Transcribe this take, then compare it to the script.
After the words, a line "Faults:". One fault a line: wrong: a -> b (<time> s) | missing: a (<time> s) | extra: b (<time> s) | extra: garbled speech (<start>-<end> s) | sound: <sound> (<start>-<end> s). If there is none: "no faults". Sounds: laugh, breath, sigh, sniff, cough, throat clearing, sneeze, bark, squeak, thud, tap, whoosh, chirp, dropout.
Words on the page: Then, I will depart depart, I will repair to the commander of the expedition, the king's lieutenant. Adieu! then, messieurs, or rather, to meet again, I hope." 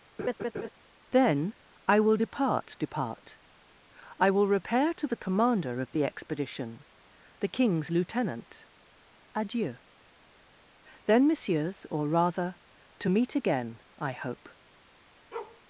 Then, I will depart depart, I will repair to the commander of the expedition, the king's lieutenant. Adieu! then, messieurs, or rather, to meet again, I hope."
Faults:
sound: laugh (0.2-0.7 s)
sound: bark (15.3-15.6 s)